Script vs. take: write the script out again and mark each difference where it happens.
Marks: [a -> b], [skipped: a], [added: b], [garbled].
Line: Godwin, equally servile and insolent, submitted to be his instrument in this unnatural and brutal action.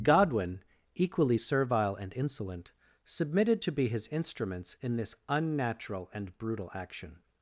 Godwin, equally servile and insolent, submitted to be his [instrument -> instruments] in this unnatural and brutal action.